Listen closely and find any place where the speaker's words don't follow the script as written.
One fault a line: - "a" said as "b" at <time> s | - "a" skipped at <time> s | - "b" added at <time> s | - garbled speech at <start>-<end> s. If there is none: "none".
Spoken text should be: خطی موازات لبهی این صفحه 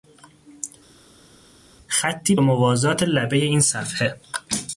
none